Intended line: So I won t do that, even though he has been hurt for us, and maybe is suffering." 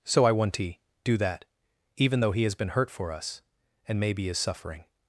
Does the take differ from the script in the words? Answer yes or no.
yes